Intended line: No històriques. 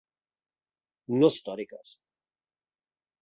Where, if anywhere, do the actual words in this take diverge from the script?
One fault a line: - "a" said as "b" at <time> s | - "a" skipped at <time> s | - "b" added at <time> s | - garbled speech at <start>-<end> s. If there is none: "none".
none